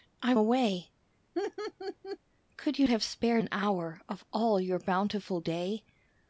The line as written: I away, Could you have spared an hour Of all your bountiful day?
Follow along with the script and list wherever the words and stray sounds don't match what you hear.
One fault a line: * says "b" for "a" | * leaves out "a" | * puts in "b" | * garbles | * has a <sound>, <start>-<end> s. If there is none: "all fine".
* has a laugh, 1.3-2.2 s